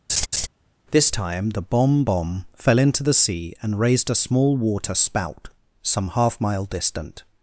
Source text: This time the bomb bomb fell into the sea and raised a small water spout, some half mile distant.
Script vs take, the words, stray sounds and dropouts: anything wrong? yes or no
yes